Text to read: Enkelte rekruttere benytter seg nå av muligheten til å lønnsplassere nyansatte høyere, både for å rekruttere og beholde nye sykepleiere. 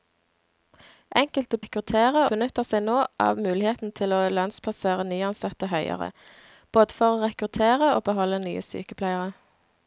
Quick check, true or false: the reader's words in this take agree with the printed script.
true